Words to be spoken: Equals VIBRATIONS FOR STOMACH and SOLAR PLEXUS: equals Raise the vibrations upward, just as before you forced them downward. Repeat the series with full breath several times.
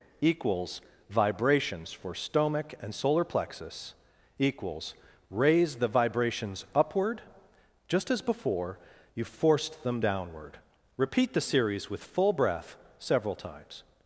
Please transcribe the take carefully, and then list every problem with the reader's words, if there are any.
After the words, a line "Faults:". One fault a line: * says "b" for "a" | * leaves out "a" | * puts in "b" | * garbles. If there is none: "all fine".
Equals VIBRATIONS FOR STOMACH and SOLAR PLEXUS: equals Raise the vibrations upward, just as before you forced them downward. Repeat the series with full breath several times.
Faults:
all fine